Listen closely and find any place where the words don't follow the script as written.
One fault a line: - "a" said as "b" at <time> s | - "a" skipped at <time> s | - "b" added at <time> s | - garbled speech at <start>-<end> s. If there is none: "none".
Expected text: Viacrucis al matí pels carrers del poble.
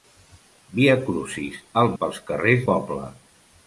- "matí" skipped at 1.9 s
- "del" skipped at 2.6 s